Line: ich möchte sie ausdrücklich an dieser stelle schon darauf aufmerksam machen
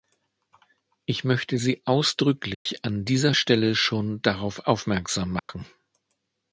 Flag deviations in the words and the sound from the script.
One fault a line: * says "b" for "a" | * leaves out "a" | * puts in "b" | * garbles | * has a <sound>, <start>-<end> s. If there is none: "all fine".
* has a dropout, 2.5-2.7 s
* has a dropout, 5.4-5.5 s